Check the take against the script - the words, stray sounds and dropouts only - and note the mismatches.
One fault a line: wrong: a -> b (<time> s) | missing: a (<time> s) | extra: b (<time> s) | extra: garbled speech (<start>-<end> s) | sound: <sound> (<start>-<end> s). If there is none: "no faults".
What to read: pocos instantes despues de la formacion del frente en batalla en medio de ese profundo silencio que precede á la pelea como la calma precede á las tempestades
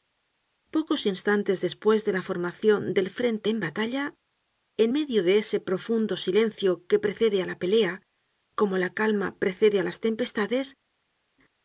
no faults